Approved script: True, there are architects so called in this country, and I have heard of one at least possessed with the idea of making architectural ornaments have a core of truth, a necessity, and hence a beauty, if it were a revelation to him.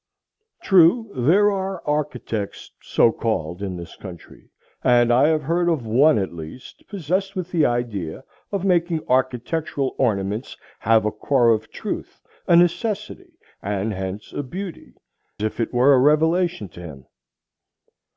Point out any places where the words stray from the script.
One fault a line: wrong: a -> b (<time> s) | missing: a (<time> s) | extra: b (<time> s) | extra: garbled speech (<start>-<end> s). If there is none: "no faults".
no faults